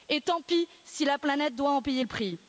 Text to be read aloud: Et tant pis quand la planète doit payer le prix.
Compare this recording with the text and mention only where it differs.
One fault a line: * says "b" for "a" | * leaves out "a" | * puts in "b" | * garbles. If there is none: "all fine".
* says "si" for "quand"
* puts in "en"